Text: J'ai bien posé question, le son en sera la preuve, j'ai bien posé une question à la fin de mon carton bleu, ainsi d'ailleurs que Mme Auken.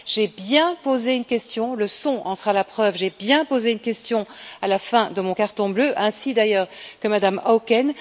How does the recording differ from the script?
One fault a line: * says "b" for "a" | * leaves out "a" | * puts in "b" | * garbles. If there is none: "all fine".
* puts in "une"